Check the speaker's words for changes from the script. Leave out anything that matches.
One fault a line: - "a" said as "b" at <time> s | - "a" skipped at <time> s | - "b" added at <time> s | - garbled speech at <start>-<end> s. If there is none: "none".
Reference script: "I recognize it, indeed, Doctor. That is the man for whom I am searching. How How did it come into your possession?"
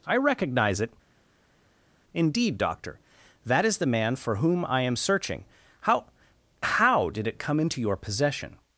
none